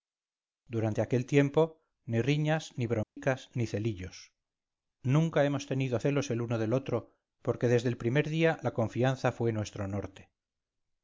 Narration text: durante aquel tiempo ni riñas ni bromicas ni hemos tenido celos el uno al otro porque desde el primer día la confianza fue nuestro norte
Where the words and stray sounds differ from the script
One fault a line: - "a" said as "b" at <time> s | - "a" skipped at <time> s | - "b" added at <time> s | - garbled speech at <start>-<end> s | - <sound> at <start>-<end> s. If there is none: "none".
- dropout at 3.0-3.2 s
- "celillos nunca" added at 3.7 s
- "al" said as "del" at 6.6 s